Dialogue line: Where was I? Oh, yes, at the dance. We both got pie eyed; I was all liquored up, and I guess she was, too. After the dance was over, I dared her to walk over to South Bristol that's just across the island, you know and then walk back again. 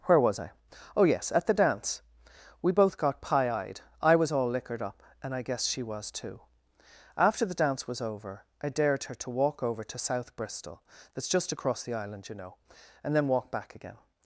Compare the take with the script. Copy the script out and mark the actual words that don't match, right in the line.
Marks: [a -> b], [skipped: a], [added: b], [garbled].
Where was I? Oh, yes, at the dance. We both got pie eyed; I was all liquored up, and I guess she was, too. After the dance was over, I dared her to walk over to South Bristol that's just across the island, you know and then walk back again.